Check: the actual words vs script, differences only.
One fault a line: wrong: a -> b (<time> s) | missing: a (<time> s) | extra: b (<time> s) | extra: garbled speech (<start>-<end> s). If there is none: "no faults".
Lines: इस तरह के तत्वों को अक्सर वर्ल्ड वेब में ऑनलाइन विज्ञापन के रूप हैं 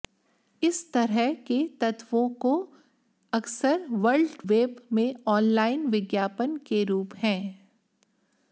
no faults